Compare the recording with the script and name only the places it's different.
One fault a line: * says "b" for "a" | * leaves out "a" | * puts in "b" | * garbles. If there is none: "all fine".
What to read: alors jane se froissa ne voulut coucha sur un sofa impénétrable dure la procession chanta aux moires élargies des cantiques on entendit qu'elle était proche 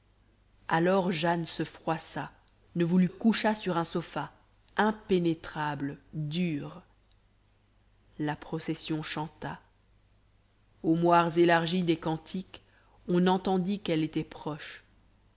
all fine